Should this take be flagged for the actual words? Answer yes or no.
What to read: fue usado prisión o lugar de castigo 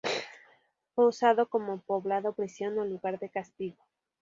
yes